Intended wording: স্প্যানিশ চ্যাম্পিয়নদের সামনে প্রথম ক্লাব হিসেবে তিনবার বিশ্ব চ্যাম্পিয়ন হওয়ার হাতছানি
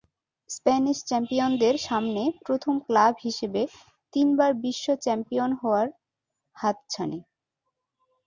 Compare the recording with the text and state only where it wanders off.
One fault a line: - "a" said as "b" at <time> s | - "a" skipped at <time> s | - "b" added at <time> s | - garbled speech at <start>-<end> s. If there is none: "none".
none